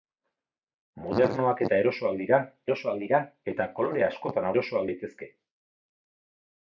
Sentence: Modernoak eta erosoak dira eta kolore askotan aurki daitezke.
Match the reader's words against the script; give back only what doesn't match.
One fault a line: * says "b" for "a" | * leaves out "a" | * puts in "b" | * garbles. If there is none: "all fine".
* puts in "erosoak dira"
* says "erosoak" for "aurki"